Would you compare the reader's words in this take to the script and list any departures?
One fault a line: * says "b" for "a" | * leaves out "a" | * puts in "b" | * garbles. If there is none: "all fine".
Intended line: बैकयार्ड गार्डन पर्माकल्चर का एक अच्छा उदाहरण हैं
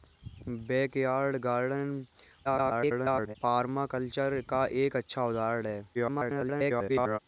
* garbles
* garbles